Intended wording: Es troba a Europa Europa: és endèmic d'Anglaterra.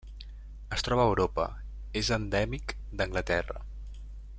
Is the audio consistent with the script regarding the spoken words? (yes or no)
no